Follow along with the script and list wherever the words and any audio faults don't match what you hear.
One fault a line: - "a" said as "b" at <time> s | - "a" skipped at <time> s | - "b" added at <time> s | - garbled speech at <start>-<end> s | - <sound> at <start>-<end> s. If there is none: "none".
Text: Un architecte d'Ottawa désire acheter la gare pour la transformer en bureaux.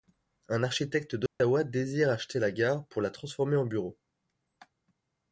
- dropout at 1.3-1.4 s